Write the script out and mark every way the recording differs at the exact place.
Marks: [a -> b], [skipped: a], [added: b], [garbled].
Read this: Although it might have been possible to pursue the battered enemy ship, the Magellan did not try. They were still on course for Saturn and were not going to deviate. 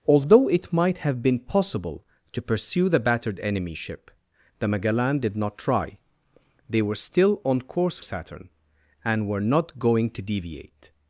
Although it might have been possible to pursue the battered enemy ship, the Magellan did not try. They were still on course [skipped: for] Saturn and were not going to deviate.